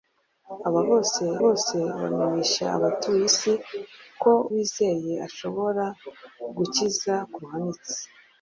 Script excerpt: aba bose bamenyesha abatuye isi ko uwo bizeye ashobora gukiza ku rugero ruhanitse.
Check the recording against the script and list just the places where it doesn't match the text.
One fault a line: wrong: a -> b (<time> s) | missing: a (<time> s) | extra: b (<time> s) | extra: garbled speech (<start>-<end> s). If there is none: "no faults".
extra: bose (1.4 s)
missing: uwo (4.3 s)
missing: rugero (7.4 s)